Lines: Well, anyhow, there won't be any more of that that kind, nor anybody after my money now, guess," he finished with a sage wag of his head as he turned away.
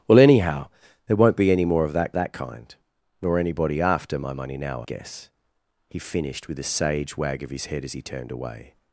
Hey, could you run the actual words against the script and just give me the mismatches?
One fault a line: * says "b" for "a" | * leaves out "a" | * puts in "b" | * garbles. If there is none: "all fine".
all fine